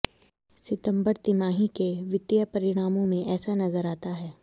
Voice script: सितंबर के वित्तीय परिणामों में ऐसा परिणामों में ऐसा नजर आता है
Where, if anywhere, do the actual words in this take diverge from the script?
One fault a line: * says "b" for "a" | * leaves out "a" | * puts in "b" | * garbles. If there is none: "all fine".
* puts in "तिमाही"
* leaves out "परिणामों में ऐसा"